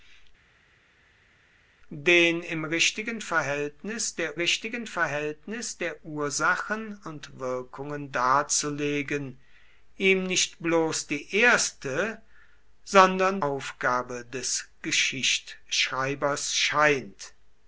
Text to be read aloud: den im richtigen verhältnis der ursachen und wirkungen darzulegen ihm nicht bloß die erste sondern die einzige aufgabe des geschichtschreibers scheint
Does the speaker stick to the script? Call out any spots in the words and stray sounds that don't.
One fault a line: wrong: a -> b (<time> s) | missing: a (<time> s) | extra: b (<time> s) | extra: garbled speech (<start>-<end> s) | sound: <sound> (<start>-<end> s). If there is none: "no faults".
extra: richtigen verhältnis der (4.3 s)
missing: die einzige (13.4 s)